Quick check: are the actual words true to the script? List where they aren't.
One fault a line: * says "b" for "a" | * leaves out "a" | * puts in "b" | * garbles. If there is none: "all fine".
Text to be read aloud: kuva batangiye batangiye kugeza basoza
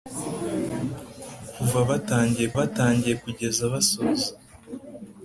all fine